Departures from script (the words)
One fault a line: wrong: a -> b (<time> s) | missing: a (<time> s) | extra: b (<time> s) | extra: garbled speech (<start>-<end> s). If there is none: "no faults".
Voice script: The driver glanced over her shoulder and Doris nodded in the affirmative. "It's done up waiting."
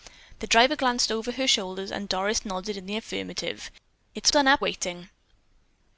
no faults